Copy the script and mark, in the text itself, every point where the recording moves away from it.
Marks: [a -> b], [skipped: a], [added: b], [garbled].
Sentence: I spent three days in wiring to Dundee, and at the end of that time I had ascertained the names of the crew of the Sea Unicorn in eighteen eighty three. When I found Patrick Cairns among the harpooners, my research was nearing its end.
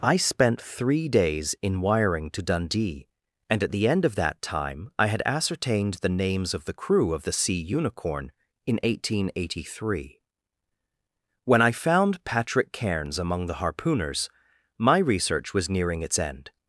I spent three days in wiring to Dundee, and at the end of that time I had ascertained the names of the crew of the Sea Unicorn in eighteen eighty three. When I found Patrick Cairns among the harpooners, my research was nearing its end.